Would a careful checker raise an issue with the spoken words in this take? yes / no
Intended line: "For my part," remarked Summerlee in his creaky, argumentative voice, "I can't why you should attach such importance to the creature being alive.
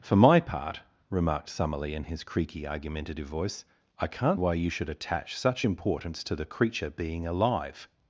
no